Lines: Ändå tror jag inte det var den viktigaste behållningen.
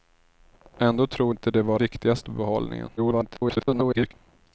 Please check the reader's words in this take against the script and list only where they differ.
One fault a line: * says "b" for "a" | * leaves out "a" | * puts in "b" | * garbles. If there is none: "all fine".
* leaves out "jag"
* leaves out "den"
* garbles